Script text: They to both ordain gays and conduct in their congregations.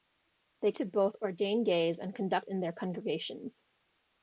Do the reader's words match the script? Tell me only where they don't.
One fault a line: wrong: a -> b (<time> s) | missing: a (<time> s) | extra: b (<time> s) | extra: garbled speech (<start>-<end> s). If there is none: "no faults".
no faults